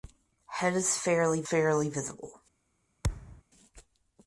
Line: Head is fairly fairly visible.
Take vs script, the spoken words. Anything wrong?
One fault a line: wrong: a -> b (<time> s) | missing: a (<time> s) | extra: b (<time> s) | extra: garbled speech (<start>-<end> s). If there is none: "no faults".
no faults